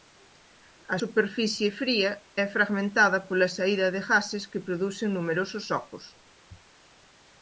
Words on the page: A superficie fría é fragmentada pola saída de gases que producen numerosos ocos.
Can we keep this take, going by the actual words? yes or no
yes